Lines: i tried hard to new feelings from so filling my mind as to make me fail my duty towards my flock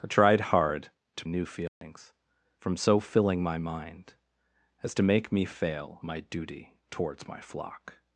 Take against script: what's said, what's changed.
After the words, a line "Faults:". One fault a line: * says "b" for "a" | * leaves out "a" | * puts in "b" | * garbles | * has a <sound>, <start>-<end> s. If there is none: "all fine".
i tried hard to new feelings from so filling my mind as to make me fail my duty towards my flock
Faults:
* has a dropout, 1.7-1.8 s